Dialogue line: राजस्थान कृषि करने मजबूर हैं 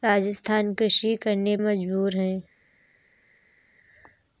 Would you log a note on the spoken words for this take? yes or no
no